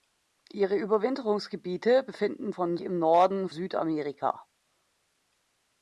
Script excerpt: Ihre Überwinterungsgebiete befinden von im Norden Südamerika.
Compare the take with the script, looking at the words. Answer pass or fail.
pass